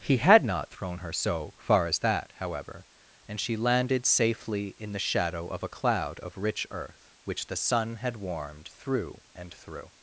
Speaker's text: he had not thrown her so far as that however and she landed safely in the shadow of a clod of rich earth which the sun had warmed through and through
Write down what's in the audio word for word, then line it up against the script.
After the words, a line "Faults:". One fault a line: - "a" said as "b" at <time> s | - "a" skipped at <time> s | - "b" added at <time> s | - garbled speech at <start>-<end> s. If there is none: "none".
he had not thrown her so far as that however and she landed safely in the shadow of a cloud of rich earth which the sun had warmed through and through
Faults:
- "clod" said as "cloud" at 5.7 s